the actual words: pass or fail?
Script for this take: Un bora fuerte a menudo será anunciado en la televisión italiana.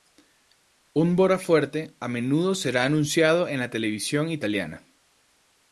pass